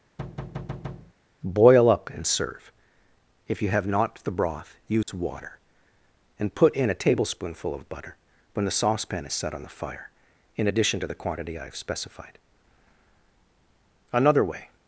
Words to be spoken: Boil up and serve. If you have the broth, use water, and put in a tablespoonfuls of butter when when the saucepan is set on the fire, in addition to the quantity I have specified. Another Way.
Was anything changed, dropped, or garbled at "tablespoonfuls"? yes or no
yes